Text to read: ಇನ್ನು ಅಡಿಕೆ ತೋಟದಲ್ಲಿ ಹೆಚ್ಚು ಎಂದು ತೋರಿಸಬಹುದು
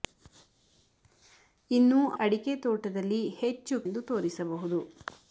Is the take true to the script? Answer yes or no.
yes